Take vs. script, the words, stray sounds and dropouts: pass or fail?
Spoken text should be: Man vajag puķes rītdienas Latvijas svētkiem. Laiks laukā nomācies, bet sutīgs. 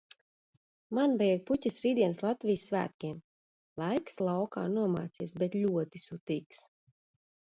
fail